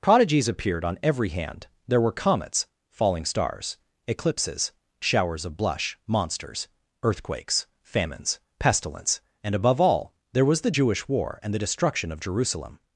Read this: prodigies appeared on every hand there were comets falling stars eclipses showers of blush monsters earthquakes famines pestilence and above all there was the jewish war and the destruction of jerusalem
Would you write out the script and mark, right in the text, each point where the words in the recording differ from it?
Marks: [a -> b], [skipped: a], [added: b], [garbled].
prodigies appeared on every hand there were comets falling stars eclipses showers of blush monsters earthquakes famines pestilence and above all there was the jewish war and the destruction of jerusalem